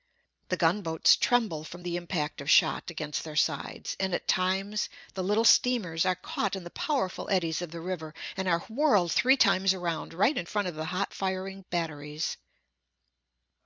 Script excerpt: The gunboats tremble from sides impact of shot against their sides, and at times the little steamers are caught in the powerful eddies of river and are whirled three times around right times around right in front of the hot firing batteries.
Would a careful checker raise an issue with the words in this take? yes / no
yes